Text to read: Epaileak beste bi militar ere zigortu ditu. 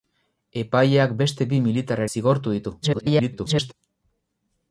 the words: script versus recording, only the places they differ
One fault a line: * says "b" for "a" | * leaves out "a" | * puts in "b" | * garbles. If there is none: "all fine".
* leaves out "ere"
* garbles